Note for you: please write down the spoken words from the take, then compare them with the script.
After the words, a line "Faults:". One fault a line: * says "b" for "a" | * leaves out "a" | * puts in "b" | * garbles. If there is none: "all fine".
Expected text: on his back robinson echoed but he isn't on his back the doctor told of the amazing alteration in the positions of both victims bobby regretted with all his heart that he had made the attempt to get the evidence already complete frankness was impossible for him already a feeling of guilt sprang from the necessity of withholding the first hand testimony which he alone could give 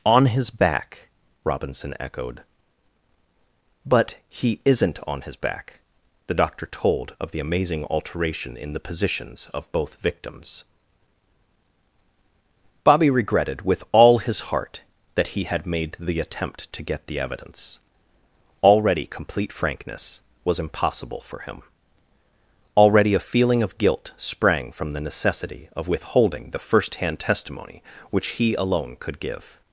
on his back robinson echoed but he isn't on his back the doctor told of the amazing alteration in the positions of both victims bobby regretted with all his heart that he had made the attempt to get the evidence already complete frankness was impossible for him already a feeling of guilt sprang from the necessity of withholding the first hand testimony which he alone could give
Faults:
all fine